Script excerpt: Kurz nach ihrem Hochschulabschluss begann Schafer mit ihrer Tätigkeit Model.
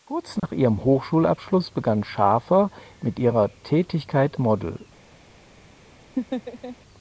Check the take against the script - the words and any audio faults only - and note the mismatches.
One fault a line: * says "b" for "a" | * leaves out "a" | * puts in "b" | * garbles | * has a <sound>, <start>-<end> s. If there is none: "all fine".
* has a dropout, 0.4-0.4 s
* has a laugh, 6.2-6.8 s